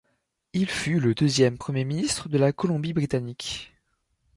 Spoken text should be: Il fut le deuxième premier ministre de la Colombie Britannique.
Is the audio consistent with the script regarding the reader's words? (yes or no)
yes